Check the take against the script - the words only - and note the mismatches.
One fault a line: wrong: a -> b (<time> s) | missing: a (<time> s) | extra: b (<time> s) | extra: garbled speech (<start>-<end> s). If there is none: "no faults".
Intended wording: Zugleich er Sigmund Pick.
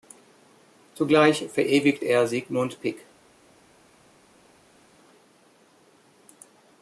extra: verewigt (1.5 s)